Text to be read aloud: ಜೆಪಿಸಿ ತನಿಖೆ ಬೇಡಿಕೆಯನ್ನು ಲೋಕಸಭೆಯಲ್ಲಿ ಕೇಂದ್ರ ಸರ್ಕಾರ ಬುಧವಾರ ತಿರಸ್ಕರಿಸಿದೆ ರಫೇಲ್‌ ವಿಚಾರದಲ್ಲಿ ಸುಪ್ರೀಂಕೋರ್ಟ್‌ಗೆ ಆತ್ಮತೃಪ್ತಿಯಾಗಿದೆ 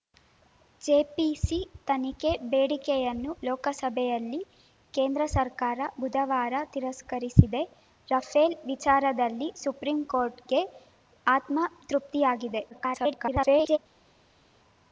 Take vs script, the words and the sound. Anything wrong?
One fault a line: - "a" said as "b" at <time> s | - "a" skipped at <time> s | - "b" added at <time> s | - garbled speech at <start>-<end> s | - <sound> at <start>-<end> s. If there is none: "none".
- garbled speech at 12.7-13.8 s